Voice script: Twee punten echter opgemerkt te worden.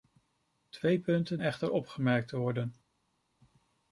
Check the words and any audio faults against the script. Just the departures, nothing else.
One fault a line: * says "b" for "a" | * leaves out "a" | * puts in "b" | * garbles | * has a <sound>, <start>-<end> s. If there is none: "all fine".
all fine